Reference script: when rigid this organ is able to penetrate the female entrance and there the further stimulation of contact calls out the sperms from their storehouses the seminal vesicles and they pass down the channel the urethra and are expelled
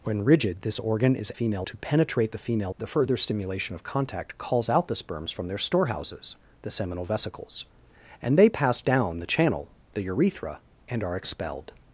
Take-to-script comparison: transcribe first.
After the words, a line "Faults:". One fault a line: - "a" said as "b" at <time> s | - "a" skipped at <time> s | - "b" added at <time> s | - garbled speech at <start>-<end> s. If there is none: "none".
when rigid this organ is female to penetrate the female the further stimulation of contact calls out the sperms from their storehouses the seminal vesicles and they pass down the channel the urethra and are expelled
Faults:
- "able" said as "female" at 1.3 s
- "entrance and there" skipped at 2.7 s